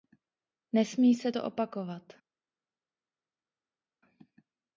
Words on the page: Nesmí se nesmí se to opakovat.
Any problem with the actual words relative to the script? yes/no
yes